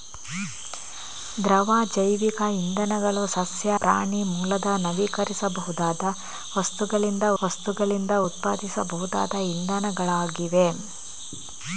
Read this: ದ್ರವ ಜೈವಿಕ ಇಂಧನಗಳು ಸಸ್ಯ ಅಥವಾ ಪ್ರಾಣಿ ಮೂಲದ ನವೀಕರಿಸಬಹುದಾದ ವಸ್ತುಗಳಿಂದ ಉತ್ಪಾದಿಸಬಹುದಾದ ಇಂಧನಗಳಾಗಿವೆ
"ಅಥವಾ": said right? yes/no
no